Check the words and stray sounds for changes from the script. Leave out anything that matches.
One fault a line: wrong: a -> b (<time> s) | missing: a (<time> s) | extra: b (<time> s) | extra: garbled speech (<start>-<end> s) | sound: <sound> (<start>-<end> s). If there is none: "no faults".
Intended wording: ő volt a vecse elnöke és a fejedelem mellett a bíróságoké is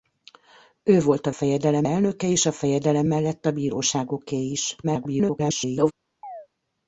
wrong: vecse -> fejedelem (1.3 s)
extra: garbled speech (4.8-5.9 s)
sound: chirp (6.2-6.5 s)